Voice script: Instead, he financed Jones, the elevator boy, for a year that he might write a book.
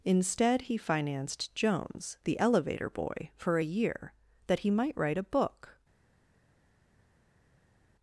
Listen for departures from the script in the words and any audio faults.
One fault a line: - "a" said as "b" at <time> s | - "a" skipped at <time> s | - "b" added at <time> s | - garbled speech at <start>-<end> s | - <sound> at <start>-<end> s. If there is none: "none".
none